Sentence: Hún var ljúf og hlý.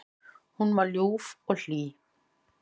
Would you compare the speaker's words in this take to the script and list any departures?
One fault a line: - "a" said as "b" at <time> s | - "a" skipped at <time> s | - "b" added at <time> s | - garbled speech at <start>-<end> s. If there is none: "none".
none